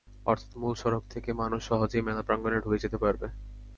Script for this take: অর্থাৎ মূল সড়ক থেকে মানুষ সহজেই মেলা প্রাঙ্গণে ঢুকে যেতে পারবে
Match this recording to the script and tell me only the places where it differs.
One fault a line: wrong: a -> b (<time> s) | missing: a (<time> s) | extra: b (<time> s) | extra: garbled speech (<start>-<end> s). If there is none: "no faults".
no faults